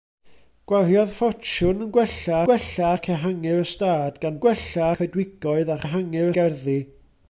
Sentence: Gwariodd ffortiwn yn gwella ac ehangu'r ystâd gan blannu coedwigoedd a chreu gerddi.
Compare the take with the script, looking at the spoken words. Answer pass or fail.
fail